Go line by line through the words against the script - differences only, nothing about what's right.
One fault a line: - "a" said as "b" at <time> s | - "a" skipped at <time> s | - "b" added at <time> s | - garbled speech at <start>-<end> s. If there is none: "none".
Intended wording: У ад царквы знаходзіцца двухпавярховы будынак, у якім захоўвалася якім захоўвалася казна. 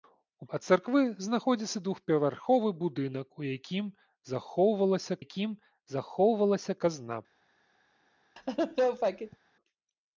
none